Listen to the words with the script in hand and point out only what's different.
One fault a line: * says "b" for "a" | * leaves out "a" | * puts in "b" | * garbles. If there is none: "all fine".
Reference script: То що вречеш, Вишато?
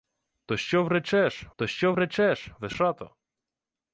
* puts in "то що вречеш"